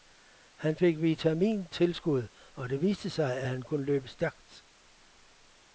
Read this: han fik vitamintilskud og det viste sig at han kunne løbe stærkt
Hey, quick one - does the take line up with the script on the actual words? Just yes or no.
yes